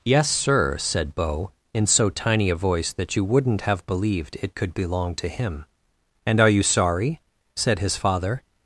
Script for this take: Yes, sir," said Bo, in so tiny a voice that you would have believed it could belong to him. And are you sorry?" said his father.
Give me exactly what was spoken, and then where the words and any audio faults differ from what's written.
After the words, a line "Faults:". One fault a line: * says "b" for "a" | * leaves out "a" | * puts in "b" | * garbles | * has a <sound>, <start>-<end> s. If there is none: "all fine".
Yes, sir," said Bo, in so tiny a voice that you wouldn't have believed it could belong to him. And are you sorry?" said his father.
Faults:
* says "wouldn't" for "would"